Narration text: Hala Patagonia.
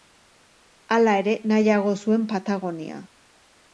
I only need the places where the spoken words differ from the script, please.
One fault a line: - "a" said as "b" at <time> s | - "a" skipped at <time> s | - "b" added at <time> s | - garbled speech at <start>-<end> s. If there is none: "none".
- "ere nahiago zuen" added at 1.2 s